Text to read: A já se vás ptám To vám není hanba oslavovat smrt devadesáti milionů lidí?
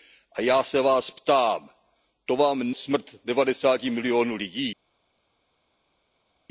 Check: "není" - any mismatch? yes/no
yes